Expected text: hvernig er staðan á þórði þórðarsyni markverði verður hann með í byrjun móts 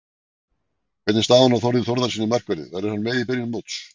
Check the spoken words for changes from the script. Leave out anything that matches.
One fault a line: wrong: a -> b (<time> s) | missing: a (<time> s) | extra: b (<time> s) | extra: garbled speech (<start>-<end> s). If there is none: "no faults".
no faults